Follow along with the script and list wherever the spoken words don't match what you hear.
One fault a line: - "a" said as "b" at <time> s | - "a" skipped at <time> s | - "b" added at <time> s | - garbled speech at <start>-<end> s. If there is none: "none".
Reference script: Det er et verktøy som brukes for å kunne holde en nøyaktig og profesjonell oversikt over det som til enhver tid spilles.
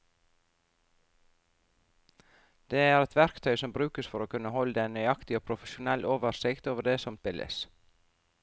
- "til enhver tid" skipped at 7.2 s